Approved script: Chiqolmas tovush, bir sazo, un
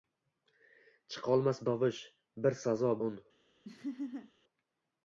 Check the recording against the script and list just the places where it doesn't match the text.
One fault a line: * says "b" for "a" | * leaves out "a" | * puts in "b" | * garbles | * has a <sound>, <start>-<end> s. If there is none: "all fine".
* has a laugh, 3.6-4.3 s